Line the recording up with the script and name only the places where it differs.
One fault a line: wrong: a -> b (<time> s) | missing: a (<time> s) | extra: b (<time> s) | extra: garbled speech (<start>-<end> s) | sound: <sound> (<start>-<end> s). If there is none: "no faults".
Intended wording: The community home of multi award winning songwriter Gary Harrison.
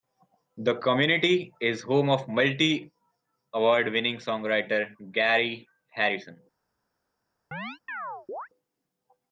extra: is (1.6 s)
sound: chirp (7.5-8.5 s)